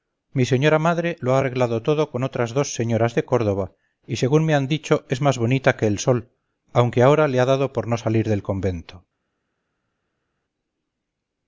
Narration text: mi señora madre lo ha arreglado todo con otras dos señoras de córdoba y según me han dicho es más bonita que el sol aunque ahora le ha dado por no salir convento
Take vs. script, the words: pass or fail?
fail